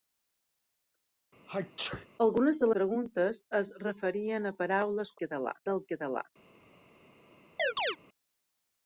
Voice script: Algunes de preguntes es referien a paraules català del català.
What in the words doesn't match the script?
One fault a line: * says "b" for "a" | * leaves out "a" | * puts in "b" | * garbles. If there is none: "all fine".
all fine